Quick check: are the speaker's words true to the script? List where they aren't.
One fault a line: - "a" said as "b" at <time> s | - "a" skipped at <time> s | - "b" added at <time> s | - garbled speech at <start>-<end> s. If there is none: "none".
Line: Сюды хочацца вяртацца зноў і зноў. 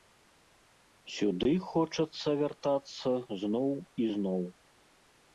none